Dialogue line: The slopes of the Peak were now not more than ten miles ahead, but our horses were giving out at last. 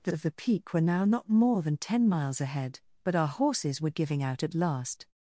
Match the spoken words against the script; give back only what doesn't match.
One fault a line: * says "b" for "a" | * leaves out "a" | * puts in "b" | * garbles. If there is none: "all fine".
* leaves out "slopes"